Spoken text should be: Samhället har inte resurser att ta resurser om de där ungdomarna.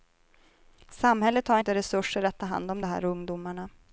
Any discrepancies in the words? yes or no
yes